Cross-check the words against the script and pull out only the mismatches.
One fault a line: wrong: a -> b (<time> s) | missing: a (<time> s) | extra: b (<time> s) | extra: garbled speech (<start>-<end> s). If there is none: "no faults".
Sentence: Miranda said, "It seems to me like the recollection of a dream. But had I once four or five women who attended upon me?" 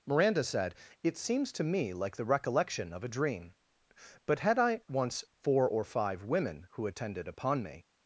no faults